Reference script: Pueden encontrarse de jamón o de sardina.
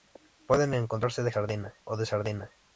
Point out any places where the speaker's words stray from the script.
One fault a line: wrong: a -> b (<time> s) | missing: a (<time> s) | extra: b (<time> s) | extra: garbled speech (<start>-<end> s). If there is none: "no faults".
wrong: jamón -> sardina (1.3 s)